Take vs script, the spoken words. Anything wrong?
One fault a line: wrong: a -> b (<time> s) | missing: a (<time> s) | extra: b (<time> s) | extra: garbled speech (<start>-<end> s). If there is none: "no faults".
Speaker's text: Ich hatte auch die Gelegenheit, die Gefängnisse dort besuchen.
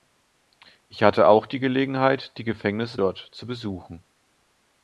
extra: zu (3.3 s)